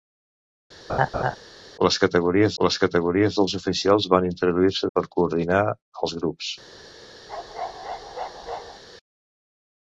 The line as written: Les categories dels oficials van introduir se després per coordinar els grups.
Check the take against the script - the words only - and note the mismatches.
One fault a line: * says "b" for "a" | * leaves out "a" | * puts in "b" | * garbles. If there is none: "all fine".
* puts in "les categories"
* leaves out "després"